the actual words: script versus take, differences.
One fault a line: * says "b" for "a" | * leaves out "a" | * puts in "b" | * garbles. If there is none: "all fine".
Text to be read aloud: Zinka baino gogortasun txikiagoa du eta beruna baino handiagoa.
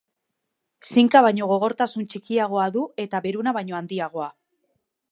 all fine